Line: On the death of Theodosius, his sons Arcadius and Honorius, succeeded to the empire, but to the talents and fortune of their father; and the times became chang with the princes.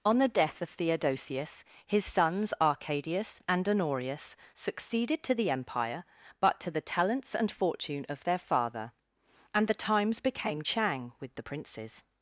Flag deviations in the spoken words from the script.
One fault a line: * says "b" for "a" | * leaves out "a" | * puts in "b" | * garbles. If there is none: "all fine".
all fine